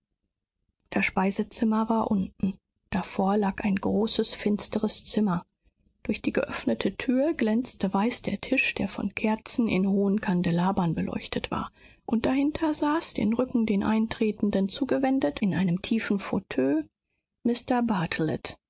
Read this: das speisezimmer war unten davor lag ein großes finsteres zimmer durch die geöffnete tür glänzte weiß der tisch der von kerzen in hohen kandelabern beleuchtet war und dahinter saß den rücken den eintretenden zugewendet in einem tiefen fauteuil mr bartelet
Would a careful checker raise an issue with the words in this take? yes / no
no